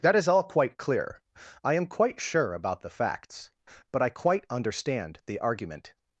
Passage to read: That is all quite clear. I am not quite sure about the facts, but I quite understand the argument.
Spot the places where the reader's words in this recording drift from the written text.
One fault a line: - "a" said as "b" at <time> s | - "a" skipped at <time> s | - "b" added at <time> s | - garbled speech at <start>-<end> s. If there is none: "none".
- "not" skipped at 1.9 s